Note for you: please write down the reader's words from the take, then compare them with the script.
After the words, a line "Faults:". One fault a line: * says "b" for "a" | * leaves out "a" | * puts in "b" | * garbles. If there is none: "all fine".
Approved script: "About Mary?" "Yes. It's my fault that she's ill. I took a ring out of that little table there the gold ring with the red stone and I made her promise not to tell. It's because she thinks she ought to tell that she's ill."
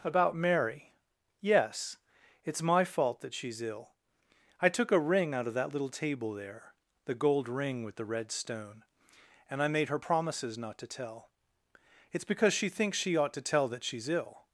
"About Mary?" "Yes. It's my fault that she's ill. I took a ring out of that little table there the gold ring with the red stone and I made her promises not to tell. It's because she thinks she ought to tell that she's ill."
Faults:
* says "promises" for "promise"